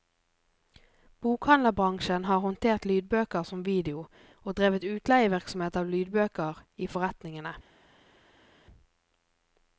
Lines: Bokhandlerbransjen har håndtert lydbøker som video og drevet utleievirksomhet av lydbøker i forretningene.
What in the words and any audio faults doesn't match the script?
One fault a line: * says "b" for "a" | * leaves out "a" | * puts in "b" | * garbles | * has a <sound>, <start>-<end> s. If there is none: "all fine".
all fine